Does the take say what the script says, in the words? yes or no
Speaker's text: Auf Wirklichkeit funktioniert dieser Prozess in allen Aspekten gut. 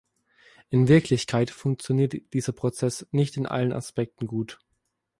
no